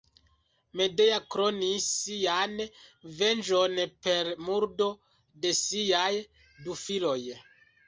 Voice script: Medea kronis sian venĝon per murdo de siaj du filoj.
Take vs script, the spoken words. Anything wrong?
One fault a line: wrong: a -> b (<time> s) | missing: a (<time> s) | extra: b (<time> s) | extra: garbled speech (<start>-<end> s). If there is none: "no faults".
no faults